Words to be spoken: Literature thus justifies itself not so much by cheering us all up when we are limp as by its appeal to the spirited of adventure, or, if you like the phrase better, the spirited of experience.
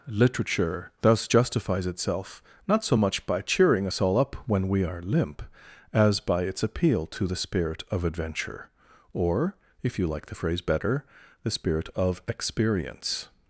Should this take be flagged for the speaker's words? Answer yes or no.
yes